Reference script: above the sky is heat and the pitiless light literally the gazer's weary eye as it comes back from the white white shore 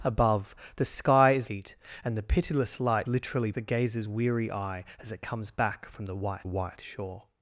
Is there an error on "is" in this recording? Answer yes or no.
no